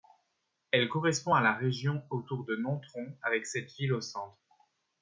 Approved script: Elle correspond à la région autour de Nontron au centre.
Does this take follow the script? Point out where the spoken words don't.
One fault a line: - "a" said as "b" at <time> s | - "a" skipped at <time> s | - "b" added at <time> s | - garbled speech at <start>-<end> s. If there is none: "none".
- "avec cette ville" added at 3.2 s